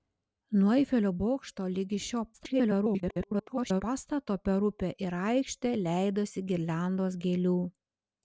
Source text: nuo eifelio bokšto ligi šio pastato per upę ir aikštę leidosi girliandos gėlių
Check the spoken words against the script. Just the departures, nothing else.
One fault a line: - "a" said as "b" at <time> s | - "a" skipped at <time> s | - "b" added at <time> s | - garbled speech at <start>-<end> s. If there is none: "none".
- garbled speech at 2.3-3.8 s